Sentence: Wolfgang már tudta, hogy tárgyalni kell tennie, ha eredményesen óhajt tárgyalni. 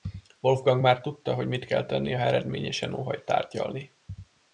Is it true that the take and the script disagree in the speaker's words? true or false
true